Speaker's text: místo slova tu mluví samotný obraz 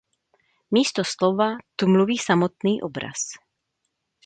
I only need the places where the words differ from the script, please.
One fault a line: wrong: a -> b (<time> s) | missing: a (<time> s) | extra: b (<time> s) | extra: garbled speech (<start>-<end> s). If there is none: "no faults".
no faults